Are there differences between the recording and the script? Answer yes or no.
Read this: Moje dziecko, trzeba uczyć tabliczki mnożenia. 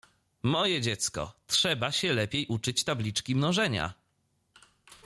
yes